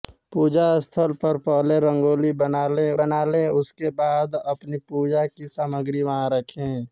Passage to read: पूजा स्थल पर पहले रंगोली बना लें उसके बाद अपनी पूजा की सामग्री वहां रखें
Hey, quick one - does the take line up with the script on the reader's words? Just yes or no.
no